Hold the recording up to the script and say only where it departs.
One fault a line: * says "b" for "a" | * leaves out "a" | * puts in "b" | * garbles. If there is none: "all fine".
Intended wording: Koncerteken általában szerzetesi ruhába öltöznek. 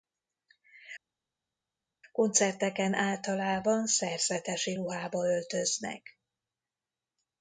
all fine